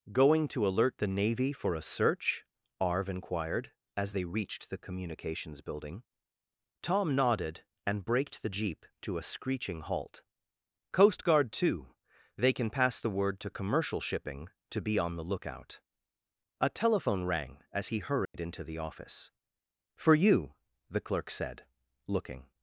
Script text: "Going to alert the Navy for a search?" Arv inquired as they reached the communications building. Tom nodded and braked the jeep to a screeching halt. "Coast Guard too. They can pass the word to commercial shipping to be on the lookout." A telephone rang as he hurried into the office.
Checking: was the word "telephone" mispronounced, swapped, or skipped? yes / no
no